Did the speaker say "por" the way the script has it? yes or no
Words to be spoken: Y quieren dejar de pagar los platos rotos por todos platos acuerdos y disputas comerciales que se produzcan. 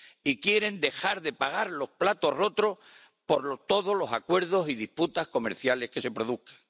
yes